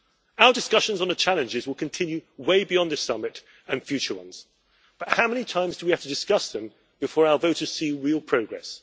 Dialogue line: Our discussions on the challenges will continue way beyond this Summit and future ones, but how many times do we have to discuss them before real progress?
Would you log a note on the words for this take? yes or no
yes